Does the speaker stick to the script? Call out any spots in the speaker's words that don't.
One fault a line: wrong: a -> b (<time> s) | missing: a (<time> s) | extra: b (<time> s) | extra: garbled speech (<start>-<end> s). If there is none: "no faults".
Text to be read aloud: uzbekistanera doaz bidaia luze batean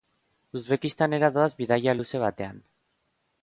no faults